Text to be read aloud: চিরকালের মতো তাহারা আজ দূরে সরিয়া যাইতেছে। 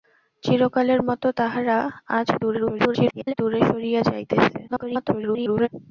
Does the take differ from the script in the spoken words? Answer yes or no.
yes